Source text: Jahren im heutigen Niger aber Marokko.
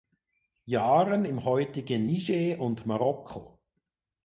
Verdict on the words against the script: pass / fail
fail